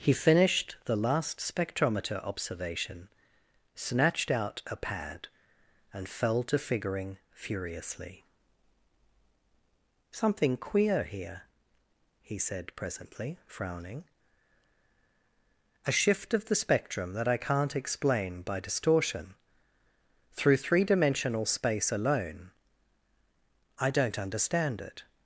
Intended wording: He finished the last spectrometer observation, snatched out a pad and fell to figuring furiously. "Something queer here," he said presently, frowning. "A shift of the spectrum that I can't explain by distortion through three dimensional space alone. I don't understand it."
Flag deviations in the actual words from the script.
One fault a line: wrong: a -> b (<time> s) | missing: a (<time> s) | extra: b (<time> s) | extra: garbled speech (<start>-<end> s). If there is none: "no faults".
no faults